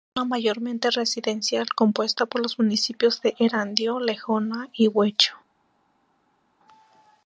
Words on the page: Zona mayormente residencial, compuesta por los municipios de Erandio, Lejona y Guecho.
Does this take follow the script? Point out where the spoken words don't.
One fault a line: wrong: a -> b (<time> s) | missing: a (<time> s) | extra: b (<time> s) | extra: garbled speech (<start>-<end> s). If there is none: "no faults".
no faults